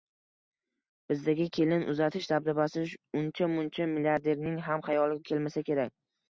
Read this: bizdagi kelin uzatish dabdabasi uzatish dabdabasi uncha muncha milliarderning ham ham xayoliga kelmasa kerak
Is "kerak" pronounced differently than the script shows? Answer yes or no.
no